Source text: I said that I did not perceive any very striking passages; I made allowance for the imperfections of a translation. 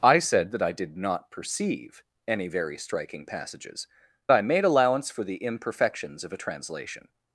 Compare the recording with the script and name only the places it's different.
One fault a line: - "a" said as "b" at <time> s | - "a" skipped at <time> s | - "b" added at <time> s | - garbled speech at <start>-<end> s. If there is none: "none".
none